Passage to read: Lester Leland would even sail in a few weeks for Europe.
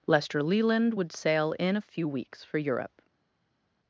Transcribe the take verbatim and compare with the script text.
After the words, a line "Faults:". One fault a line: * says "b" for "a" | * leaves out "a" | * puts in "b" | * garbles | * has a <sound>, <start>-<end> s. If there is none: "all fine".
Lester Leland would sail in a few weeks for Europe.
Faults:
* leaves out "even"